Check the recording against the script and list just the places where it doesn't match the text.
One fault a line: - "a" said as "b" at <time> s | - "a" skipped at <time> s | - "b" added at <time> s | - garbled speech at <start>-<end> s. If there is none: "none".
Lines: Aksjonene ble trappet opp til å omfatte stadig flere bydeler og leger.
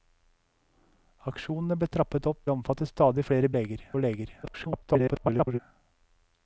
- "til" skipped at 2.4 s
- "bydeler" said as "leger" at 3.6 s
- garbled speech at 4.4-5.6 s